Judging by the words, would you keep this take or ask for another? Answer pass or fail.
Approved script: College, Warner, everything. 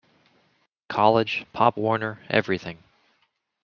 fail